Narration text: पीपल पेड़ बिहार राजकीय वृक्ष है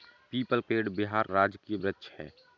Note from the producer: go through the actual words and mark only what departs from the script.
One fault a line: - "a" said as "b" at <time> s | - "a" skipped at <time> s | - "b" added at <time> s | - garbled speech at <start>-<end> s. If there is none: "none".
none